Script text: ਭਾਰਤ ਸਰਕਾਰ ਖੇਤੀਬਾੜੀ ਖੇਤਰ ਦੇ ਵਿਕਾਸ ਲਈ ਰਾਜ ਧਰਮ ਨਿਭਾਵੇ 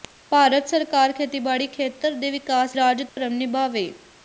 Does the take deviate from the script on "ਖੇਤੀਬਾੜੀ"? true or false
false